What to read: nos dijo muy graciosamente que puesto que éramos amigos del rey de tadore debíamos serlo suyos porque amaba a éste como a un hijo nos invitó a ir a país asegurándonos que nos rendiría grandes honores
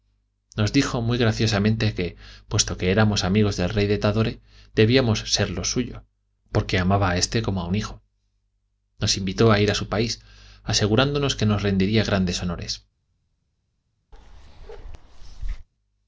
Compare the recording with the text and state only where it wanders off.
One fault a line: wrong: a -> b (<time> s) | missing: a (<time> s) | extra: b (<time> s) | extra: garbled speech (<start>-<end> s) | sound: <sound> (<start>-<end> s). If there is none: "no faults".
extra: su (9.8 s)
sound: bark (14.1-15.7 s)